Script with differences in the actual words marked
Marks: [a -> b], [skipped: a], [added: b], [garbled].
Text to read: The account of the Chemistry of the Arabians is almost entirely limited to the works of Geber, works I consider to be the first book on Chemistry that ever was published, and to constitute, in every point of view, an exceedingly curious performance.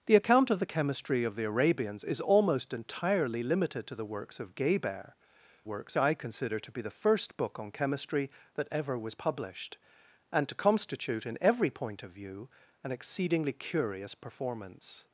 The account of the Chemistry of the Arabians is almost entirely limited to the works of Geber, works I consider to be the first book on Chemistry that ever was published, and to constitute, in every point of view, an exceedingly curious performance.